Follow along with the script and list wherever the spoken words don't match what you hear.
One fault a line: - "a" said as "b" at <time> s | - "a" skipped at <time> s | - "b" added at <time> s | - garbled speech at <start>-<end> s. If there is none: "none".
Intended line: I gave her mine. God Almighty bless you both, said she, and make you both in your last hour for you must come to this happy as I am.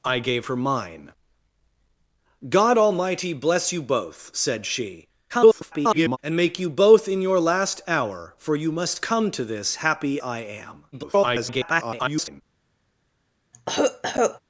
- garbled speech at 5.3-6.2 s
- "as" skipped at 10.2 s
- garbled speech at 10.9-12.4 s